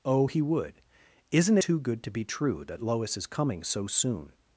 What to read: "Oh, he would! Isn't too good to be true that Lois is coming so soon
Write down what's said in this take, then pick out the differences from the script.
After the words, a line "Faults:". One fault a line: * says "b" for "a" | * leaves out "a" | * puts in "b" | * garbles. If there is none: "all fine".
"Oh, he would! Isn't too good to be true that Lois is coming so soon
Faults:
all fine